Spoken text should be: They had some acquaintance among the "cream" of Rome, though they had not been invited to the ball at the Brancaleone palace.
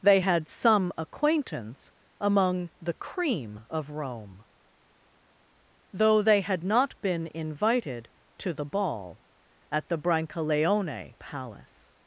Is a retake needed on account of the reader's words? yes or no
no